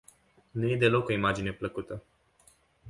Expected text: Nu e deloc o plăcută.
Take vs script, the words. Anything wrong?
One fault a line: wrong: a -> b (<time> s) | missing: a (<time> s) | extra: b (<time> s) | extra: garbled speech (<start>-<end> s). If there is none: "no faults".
extra: imagine (1.1 s)